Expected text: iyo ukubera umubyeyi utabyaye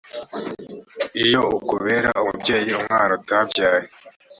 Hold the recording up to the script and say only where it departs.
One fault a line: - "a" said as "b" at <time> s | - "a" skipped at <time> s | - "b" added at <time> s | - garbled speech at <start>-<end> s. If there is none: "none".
- "umwana" added at 2.8 s